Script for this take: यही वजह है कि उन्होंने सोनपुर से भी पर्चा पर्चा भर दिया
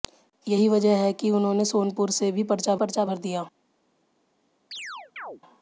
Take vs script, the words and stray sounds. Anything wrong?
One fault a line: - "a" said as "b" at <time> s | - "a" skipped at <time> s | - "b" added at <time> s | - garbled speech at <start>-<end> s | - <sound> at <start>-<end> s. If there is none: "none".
- chirp at 4.7-5.4 s